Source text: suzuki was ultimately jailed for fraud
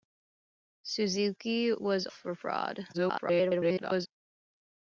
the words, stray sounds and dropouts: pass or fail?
fail